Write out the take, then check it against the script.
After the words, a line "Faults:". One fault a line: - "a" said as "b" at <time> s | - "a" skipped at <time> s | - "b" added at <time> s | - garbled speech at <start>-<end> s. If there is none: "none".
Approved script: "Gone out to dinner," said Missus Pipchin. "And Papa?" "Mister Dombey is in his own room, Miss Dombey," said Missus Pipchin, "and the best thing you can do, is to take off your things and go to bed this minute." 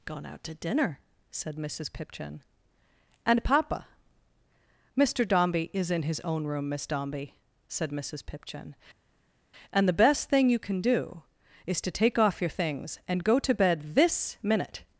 "Gone out to dinner," said Missus Pipchin. "And Papa?" "Mister Dombey is in his own room, Miss Dombey," said Missus Pipchin, "and the best thing you can do, is to take off your things and go to bed this minute."
Faults:
none